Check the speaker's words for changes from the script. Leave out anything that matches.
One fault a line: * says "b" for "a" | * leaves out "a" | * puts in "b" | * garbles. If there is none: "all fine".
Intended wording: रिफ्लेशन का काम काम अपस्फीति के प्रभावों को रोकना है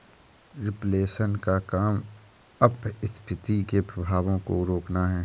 * leaves out "काम"